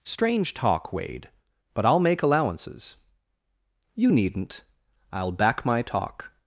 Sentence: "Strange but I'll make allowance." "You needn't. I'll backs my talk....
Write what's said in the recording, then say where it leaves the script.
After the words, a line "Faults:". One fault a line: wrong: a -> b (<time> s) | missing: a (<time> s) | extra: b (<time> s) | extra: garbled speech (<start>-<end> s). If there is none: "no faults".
"Strange talk, Wade, but I'll make allowances." "You needn't. I'll back my talk....
Faults:
extra: talk Wade (0.5 s)
wrong: allowance -> allowances (2.2 s)
wrong: backs -> back (5.3 s)